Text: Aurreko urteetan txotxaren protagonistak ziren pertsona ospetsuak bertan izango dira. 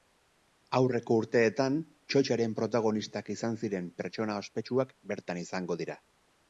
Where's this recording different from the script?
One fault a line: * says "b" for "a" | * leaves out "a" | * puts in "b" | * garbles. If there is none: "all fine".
* puts in "izan"